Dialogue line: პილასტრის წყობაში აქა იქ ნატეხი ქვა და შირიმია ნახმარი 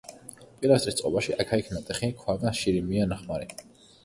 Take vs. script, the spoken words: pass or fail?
pass